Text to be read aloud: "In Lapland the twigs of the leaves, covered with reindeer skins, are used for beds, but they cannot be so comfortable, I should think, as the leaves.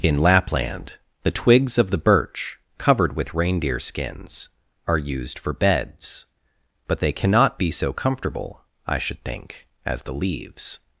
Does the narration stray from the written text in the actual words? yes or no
yes